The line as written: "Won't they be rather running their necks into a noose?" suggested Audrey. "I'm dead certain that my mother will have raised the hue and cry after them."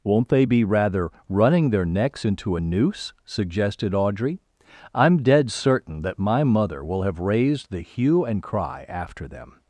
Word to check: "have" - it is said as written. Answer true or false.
true